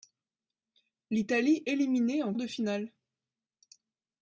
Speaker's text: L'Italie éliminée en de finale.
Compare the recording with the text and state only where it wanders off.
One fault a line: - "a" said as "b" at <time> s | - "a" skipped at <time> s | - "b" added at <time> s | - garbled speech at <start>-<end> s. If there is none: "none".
none